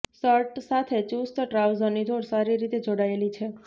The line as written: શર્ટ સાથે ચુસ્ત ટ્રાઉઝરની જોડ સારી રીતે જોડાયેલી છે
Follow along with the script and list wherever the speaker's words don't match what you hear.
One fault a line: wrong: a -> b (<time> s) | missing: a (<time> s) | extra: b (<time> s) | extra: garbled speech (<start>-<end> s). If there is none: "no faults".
no faults